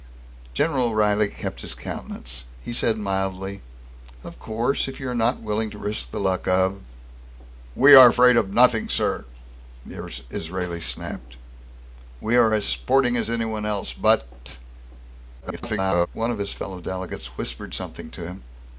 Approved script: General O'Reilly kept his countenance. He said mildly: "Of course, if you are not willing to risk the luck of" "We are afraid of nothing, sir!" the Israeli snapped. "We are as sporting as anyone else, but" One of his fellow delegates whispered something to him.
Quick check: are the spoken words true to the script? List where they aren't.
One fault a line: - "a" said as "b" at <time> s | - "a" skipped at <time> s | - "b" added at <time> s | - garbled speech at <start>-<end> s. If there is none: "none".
- garbled speech at 15.4-16.1 s